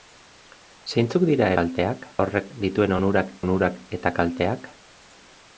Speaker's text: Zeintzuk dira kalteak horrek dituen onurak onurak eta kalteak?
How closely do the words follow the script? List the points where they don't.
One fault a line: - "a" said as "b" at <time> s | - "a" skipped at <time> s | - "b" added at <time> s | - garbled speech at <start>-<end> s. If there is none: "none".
none